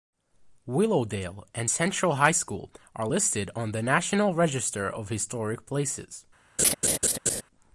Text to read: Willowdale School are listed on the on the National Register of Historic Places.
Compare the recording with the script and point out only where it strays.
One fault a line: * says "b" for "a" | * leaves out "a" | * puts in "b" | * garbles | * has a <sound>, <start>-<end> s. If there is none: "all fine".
* puts in "and Central High"
* leaves out "on the"
* has a laugh, 6.6-7.4 s